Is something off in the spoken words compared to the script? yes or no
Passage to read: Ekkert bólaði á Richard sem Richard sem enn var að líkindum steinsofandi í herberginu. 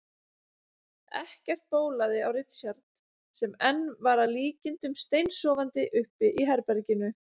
yes